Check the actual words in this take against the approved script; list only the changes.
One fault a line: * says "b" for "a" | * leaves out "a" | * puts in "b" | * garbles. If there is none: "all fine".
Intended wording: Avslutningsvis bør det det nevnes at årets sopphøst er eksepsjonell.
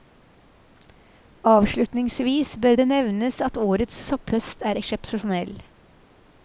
* leaves out "det"